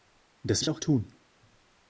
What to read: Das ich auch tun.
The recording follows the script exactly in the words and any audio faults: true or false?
true